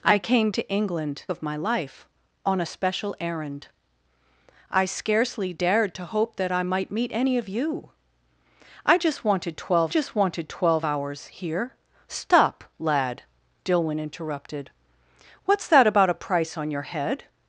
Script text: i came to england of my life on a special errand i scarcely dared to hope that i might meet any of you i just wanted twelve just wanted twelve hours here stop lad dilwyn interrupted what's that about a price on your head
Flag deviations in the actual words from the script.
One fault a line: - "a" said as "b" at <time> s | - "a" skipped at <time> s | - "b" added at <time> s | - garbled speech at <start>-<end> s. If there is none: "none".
none